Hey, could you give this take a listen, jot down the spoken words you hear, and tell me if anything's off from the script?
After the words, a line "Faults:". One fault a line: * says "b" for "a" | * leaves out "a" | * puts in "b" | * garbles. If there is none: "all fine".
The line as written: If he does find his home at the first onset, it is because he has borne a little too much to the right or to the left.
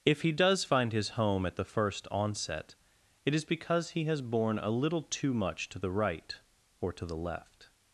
If he does find his home at the first onset, it is because he has borne a little too much to the right or to the left.
Faults:
all fine